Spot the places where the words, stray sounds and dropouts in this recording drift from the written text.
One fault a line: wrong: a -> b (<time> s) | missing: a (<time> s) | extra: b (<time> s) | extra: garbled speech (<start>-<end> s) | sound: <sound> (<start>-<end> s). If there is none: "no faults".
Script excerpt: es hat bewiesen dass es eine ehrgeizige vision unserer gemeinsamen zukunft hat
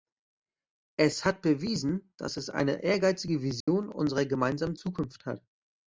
sound: dropout (3.6-3.7 s)